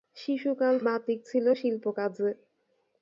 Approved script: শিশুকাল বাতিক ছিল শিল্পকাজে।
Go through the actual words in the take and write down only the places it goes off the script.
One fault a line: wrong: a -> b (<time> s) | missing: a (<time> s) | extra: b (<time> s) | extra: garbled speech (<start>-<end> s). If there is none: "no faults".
no faults